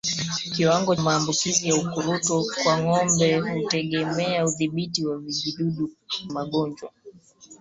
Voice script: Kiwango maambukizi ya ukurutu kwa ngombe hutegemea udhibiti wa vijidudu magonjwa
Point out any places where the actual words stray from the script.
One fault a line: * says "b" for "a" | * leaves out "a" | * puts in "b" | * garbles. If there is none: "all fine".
all fine